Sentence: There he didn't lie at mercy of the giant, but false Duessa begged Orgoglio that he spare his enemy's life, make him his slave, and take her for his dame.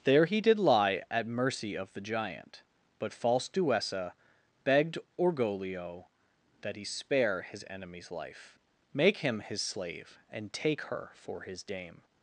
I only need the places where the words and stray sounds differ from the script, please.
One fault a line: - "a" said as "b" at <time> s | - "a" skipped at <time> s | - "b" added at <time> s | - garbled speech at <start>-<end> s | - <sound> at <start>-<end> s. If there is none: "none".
- "didn't" said as "did" at 0.4 s